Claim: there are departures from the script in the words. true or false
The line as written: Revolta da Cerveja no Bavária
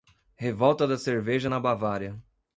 true